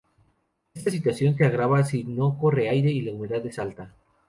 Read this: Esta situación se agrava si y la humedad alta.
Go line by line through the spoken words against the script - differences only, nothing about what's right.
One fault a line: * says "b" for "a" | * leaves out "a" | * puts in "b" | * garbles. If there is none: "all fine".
* puts in "no corre aire"
* puts in "es"